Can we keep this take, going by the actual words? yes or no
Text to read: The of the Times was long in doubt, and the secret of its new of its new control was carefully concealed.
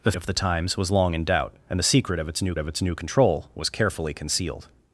yes